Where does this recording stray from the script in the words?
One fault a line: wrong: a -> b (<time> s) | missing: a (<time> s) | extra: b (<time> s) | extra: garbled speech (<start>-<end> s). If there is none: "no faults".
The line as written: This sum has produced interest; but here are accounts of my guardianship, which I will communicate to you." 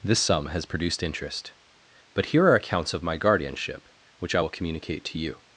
no faults